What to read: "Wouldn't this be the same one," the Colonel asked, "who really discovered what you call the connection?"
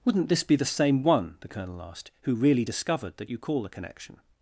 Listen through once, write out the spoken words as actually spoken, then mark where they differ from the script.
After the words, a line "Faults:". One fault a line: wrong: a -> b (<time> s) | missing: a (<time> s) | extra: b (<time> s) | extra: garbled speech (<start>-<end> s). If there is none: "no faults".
"Wouldn't this be the same one," the Colonel asked, "who really discovered that you call the connection?"
Faults:
wrong: what -> that (3.2 s)